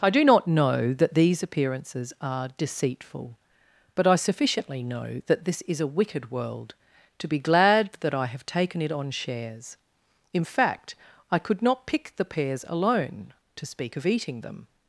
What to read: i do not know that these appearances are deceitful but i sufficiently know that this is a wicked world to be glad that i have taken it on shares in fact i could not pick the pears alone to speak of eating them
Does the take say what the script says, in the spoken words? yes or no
yes